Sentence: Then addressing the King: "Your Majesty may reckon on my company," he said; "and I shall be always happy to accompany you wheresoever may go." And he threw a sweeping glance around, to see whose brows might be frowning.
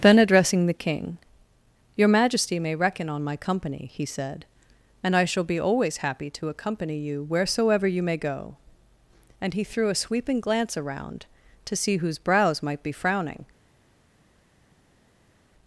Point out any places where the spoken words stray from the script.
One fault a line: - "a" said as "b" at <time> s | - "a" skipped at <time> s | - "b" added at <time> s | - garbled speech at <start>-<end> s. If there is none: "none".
- "you" added at 7.9 s